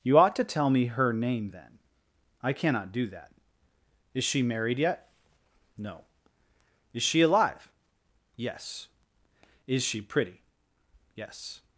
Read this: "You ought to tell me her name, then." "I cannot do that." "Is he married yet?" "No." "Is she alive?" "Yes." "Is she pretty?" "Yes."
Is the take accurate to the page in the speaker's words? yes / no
no